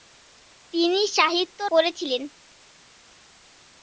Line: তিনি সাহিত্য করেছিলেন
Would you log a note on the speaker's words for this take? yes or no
no